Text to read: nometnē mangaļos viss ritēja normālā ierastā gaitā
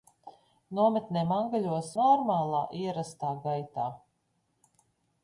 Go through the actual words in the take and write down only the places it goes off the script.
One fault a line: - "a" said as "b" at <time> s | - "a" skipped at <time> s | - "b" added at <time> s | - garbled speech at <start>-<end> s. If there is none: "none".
- "viss ritēja" skipped at 1.9 s